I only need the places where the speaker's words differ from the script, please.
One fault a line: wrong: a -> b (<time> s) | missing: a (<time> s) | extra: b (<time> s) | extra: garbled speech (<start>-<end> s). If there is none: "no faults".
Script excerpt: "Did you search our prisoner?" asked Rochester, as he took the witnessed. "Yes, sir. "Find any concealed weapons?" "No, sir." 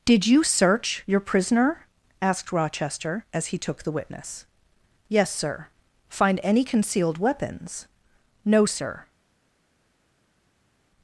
wrong: our -> your (1.1 s)
wrong: witnessed -> witness (3.9 s)